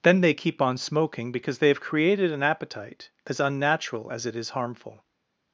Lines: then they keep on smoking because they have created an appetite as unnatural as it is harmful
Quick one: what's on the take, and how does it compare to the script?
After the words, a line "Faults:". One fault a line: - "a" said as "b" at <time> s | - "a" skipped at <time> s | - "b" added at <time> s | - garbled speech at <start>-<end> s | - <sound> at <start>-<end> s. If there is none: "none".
then they keep on smoking because they have created an appetite as unnatural as it is harmful
Faults:
none